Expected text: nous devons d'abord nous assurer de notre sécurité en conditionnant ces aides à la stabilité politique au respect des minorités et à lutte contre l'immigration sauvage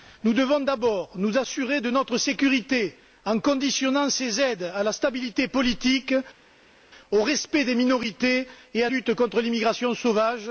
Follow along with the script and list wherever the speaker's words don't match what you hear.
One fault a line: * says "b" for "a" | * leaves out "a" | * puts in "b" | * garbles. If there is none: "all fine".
all fine